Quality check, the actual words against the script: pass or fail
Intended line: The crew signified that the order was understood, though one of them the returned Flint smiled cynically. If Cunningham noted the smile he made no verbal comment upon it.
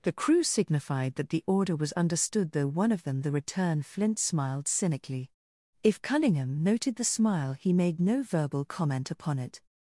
fail